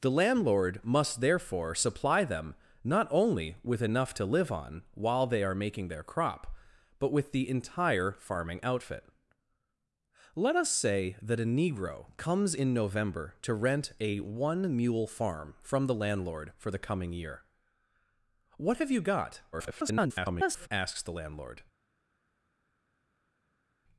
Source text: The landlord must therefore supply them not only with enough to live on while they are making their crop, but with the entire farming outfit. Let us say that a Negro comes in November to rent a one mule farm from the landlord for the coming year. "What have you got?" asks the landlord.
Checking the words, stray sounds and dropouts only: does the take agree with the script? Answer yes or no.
no